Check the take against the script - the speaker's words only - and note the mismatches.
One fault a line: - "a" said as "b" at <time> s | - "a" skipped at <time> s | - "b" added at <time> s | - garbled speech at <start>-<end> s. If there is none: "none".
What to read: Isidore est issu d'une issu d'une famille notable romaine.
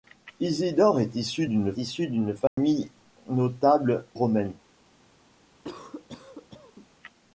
none